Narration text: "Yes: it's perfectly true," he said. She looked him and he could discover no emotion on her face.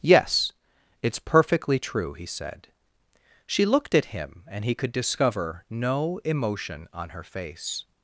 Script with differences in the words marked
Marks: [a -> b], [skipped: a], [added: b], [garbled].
"Yes: it's perfectly true," he said. She looked [added: at] him and he could discover no emotion on her face.